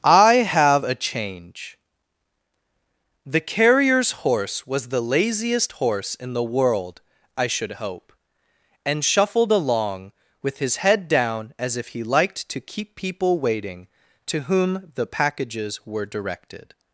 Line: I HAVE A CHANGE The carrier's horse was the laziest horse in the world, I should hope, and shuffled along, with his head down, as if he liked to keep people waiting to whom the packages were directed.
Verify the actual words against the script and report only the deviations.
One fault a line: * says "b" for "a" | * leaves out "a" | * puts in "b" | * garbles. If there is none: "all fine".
all fine